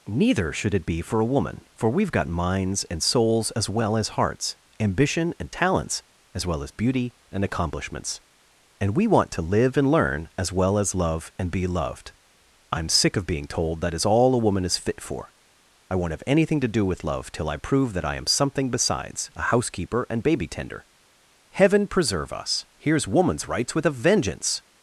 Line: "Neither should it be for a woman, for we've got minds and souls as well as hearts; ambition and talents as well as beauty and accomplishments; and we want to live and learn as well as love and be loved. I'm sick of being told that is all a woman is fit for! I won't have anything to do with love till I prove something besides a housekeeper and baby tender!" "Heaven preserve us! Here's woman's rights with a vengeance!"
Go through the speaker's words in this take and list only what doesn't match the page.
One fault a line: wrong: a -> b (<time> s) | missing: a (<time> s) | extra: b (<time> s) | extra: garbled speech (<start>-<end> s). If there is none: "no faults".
extra: that I am (17.9 s)